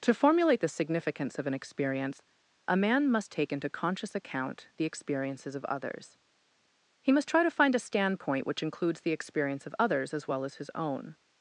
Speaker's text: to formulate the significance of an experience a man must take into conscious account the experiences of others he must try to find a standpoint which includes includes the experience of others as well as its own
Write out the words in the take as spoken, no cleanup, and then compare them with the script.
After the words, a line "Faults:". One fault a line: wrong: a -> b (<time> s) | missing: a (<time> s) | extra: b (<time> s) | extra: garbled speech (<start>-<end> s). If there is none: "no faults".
to formulate the significance of an experience a man must take into conscious account the experiences of others he must try to find a standpoint which includes the experience of others as well as his own
Faults:
missing: includes (9.0 s)
wrong: its -> his (10.5 s)